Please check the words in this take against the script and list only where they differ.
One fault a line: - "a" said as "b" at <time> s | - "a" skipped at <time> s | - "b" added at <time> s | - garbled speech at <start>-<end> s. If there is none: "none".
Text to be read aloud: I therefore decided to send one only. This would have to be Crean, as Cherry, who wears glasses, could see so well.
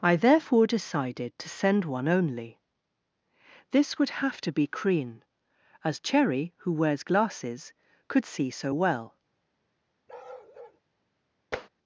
none